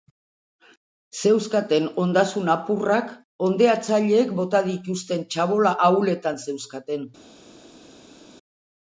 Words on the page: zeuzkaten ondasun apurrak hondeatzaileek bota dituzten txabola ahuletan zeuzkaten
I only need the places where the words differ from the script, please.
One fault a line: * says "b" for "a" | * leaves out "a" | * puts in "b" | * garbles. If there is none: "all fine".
all fine